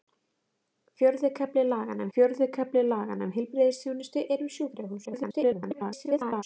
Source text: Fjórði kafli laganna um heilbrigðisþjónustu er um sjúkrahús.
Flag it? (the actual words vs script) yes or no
yes